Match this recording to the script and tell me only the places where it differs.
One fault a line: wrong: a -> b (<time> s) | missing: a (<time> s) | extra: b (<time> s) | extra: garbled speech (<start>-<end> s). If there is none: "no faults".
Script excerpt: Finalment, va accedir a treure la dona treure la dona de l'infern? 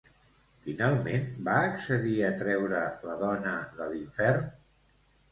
missing: treure la dona (3.5 s)